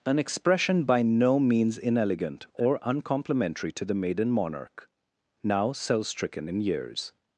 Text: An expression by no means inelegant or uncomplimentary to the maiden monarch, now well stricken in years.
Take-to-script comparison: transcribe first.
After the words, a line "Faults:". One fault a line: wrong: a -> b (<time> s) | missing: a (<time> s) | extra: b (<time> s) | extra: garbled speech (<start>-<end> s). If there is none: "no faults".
An expression by no means inelegant or uncomplimentary to the maiden monarch, now cell stricken in years.
Faults:
wrong: well -> cell (5.7 s)